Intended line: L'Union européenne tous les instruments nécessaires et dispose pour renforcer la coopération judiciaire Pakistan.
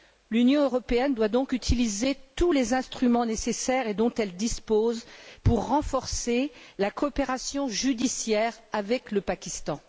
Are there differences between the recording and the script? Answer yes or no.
yes